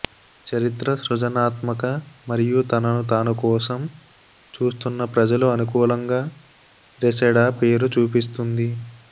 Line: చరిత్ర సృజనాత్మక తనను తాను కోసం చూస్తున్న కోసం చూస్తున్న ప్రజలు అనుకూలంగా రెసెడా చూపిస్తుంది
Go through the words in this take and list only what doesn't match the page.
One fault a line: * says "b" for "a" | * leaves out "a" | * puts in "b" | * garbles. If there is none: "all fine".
* puts in "మరియు"
* leaves out "కోసం చూస్తున్న"
* puts in "పేరు"